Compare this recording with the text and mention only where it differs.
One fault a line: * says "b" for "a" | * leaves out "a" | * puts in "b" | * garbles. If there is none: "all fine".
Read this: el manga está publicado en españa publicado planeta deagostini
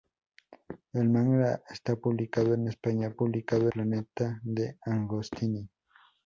all fine